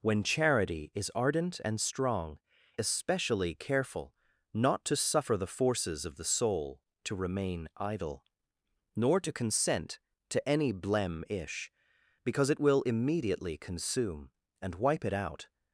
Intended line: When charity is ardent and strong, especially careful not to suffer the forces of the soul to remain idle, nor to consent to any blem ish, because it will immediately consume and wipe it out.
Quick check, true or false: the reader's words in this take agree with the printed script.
true